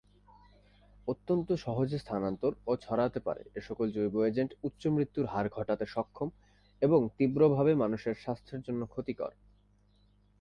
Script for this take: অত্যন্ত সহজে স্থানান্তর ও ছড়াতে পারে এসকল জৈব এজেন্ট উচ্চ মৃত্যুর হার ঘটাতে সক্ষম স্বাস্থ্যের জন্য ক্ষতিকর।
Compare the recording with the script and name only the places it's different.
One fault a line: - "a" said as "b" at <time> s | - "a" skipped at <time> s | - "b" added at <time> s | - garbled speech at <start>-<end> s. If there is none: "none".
- "এবং তীব্রভাবে মানুষের" added at 6.8 s